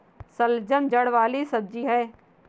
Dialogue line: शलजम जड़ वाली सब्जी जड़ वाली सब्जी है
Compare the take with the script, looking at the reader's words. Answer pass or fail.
fail